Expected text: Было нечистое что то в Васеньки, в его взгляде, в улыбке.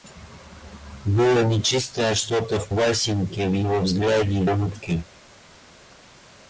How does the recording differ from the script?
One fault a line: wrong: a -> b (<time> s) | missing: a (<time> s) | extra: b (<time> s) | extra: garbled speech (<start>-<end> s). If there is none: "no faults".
no faults